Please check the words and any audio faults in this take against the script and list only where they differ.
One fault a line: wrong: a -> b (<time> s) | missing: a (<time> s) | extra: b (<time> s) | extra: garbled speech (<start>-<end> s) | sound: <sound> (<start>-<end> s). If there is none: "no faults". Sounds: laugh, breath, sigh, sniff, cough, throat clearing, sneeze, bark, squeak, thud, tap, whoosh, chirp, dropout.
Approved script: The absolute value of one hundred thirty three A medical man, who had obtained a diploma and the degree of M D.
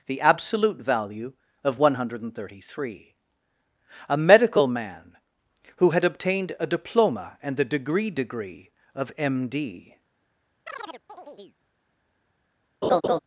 extra: degree (8.1 s)
sound: chirp (10.7-11.6 s)
sound: laugh (12.8-13.2 s)